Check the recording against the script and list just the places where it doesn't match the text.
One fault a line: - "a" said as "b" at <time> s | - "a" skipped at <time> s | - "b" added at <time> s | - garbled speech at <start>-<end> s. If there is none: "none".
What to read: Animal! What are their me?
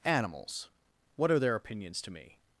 - "Animal" said as "Animals" at 0.0 s
- "opinions to" added at 1.5 s